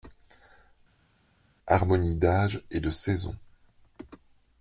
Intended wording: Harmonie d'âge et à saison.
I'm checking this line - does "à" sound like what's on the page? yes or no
no